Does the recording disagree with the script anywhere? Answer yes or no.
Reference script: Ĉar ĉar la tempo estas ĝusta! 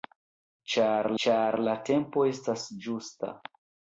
no